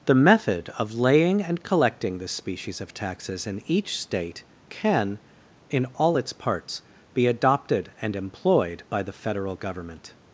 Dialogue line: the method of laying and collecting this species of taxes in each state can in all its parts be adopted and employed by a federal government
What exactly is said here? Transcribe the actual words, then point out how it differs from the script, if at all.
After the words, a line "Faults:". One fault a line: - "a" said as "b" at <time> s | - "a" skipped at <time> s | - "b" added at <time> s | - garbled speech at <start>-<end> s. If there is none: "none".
the method of laying and collecting this species of taxes in each state can in all its parts be adopted and employed by the federal government
Faults:
- "a" said as "the" at 9.0 s